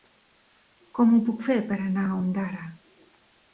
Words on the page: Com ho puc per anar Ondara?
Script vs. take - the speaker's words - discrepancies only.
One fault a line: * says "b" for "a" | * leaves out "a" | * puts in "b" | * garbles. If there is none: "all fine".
* puts in "fer"
* puts in "a"